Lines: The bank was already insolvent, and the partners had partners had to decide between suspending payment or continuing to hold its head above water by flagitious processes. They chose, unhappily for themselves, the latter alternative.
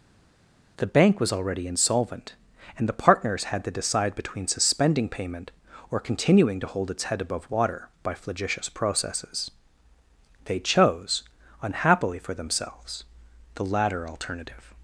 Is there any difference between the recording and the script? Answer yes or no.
yes